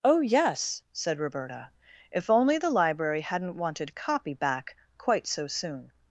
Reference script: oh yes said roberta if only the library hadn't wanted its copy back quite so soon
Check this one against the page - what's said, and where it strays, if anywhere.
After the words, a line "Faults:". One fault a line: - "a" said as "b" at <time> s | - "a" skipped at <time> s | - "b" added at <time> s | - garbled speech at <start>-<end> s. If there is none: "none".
oh yes said roberta if only the library hadn't wanted copy back quite so soon
Faults:
- "its" skipped at 3.9 s